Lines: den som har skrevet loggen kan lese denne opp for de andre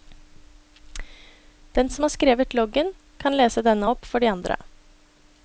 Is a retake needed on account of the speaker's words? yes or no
no